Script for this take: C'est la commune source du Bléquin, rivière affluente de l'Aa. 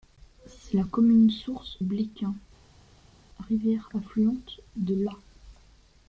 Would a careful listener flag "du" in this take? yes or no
yes